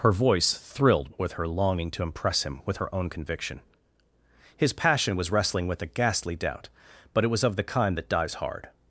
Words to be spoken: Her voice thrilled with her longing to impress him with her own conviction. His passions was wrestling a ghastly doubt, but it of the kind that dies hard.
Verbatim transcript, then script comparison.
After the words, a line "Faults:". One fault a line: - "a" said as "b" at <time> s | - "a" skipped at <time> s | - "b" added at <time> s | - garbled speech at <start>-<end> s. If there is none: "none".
Her voice thrilled with her longing to impress him with her own conviction. His passion was wrestling with a ghastly doubt, but it was of the kind that dies hard.
Faults:
- "passions" said as "passion" at 4.7 s
- "with" added at 5.7 s
- "was" added at 7.3 s